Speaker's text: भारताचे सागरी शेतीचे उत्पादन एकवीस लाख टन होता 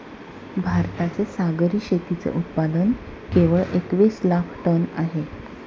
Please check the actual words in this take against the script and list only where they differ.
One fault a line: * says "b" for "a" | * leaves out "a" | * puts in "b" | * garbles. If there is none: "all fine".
* puts in "केवळ"
* says "आहे" for "होता"